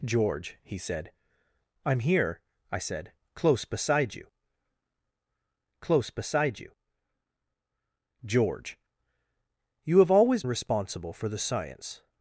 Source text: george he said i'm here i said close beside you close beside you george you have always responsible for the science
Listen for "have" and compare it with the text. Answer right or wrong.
right